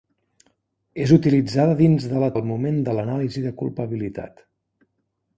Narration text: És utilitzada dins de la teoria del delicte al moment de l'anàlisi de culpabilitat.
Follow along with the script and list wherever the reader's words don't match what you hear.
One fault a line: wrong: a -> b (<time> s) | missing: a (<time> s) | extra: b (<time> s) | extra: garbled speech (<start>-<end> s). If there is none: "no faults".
missing: teoria del delicte (2.3 s)